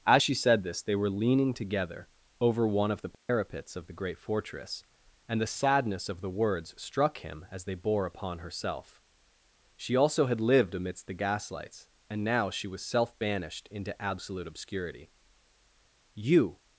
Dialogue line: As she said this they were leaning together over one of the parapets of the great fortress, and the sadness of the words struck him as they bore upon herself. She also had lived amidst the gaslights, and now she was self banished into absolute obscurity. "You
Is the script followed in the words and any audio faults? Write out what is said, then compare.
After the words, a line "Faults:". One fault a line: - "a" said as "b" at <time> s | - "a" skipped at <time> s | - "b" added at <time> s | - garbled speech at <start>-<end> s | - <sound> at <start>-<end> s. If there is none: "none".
As she said this they were leaning together over one of the parapets of the great fortress, and the sadness of the words struck him as they bore upon herself. She also had lived amidst the gaslights, and now she was self banished into absolute obscurity. "You
Faults:
- dropout at 3.1-3.3 s